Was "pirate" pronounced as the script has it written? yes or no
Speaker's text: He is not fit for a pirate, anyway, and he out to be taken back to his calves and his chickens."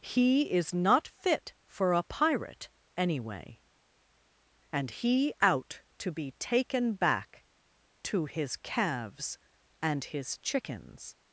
yes